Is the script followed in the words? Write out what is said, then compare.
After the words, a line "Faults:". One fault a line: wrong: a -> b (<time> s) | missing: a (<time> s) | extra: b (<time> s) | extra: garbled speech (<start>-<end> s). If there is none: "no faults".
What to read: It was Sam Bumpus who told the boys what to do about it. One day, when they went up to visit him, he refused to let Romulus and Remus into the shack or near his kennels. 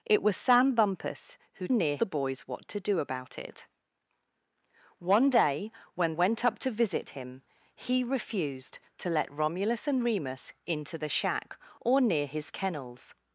It was Sam Bumpus who near the boys what to do about it. One day, when went up to visit him, he refused to let Romulus and Remus into the shack or near his kennels.
Faults:
wrong: told -> near (1.7 s)
missing: they (6.1 s)